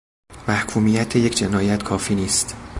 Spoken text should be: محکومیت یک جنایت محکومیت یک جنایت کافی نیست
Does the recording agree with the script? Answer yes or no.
no